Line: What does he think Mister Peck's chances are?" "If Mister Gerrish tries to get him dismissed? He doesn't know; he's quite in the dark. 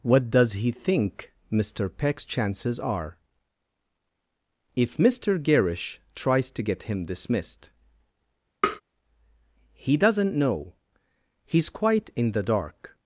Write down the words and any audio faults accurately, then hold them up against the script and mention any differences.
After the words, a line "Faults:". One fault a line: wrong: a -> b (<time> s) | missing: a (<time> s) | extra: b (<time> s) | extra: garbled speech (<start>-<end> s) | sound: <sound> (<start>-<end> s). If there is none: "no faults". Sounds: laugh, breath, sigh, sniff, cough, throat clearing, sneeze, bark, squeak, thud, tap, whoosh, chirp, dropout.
What does he think Mister Peck's chances are?" "If Mister Gerrish tries to get him dismissed? He doesn't know; he's quite in the dark.
Faults:
sound: tap (8.6-8.8 s)